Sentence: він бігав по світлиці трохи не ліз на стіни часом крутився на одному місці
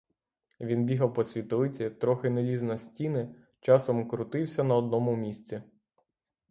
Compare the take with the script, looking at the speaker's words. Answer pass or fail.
pass